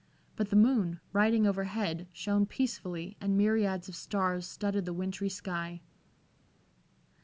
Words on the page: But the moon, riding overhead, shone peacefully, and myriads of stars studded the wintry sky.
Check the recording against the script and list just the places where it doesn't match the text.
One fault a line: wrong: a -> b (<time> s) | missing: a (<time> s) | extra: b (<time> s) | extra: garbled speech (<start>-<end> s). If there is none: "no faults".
no faults